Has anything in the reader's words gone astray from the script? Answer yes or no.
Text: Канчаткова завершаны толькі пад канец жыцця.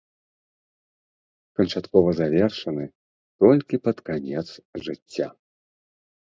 no